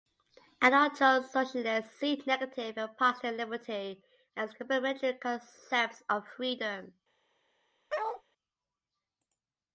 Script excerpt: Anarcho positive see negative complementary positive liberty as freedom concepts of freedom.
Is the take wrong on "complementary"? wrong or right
wrong